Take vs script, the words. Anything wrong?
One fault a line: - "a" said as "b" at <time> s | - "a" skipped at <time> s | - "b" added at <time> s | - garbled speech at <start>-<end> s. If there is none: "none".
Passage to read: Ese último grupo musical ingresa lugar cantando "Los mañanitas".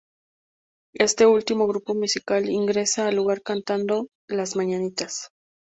- "Ese" said as "Este" at 0.9 s
- "al" added at 3.1 s
- "Los" said as "Las" at 4.3 s